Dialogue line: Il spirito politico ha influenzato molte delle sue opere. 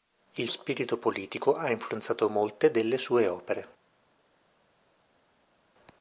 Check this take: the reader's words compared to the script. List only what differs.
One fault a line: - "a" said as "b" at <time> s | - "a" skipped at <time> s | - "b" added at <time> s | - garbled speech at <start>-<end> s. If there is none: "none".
none